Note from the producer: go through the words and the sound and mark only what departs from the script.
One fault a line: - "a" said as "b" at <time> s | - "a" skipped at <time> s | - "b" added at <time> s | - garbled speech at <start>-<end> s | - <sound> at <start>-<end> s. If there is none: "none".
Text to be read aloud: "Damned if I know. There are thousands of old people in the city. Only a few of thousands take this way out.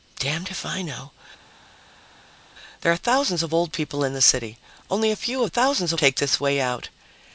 none